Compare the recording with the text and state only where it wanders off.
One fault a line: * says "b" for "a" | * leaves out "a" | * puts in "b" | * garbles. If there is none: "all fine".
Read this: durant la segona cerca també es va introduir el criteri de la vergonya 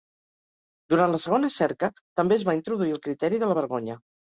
all fine